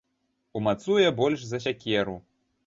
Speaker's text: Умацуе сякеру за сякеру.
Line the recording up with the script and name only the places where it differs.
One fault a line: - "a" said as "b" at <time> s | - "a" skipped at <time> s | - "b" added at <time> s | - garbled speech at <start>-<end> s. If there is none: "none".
- "сякеру" said as "больш" at 1.2 s